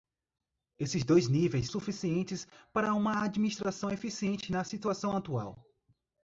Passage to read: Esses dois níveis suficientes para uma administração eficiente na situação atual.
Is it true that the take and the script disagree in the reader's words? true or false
false